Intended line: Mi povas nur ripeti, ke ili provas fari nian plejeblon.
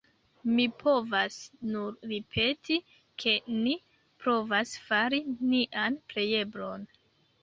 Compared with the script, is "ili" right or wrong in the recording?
wrong